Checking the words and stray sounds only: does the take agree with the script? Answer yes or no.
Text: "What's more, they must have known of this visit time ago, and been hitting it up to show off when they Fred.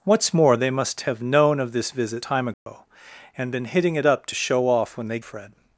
no